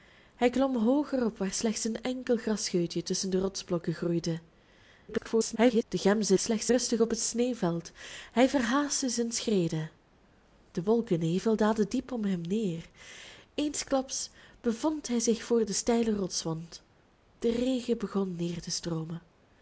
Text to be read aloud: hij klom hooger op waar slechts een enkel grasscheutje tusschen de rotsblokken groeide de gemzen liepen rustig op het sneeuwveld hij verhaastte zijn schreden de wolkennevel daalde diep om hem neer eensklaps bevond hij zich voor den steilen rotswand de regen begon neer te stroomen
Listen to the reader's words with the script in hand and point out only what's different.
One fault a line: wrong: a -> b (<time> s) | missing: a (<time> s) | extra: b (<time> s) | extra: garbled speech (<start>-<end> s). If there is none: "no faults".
extra: garbled speech (5.1-5.8 s)
wrong: liepen -> slechts (6.4 s)